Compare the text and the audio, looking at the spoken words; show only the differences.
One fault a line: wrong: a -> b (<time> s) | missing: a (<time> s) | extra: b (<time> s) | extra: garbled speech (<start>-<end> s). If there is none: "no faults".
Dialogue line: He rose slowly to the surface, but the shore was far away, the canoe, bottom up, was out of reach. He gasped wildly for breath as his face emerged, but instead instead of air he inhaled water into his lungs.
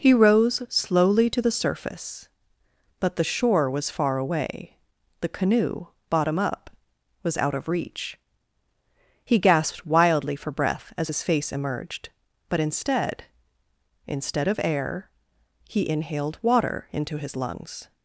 no faults